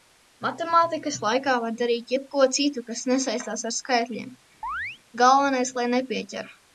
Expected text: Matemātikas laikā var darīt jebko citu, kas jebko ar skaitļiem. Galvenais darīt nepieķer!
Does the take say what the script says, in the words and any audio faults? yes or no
no